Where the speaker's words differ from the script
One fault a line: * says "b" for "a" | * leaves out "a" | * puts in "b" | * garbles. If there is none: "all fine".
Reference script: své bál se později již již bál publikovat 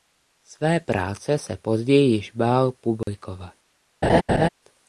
* says "práce" for "bál"
* leaves out "již"